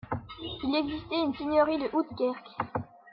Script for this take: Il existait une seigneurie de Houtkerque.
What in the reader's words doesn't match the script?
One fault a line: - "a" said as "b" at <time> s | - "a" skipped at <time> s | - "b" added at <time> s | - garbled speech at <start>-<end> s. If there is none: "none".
none